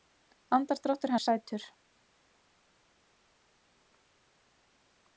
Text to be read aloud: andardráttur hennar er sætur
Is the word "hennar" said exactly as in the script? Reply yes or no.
no